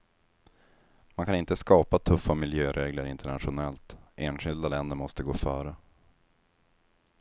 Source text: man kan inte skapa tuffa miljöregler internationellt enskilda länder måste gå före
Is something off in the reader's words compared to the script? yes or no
no